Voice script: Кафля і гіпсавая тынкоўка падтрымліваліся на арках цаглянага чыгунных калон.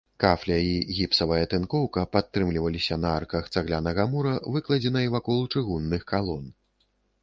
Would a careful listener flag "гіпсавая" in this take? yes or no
no